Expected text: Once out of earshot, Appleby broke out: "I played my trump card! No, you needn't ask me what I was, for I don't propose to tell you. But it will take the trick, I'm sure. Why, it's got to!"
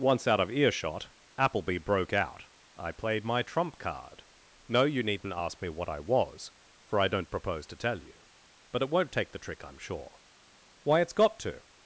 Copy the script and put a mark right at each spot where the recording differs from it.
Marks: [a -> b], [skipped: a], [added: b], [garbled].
Once out of earshot, Appleby broke out: "I played my trump card! No, you needn't ask me what I was, for I don't propose to tell you. But it [will -> won't] take the trick, I'm sure. Why, it's got to!"